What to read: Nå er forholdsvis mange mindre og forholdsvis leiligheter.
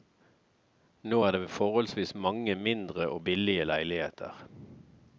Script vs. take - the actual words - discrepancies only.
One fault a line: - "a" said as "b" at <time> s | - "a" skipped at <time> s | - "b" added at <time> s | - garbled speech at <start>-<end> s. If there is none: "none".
- "det" added at 1.3 s
- "forholdsvis" said as "billige" at 3.2 s